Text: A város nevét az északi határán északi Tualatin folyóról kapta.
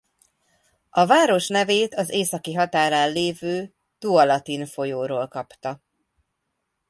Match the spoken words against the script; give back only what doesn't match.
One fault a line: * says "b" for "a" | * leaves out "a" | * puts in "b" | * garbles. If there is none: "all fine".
* says "lévő" for "északi"